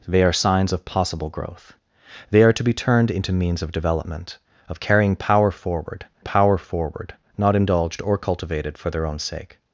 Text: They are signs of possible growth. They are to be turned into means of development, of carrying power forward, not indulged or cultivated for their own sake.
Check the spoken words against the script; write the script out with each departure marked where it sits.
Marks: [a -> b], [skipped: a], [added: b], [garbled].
They are signs of possible growth. They are to be turned into means of development, of carrying power forward, [added: power forward] not indulged or cultivated for their own sake.